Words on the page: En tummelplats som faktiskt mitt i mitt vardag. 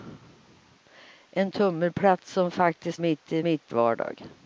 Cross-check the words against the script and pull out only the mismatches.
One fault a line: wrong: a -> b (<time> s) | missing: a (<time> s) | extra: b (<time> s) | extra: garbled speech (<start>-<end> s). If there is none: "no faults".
no faults